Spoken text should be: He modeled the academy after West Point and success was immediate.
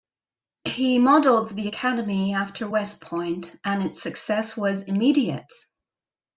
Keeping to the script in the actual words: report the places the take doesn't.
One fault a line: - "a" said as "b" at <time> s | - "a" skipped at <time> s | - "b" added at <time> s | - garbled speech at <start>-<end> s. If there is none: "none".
- "its" added at 3.8 s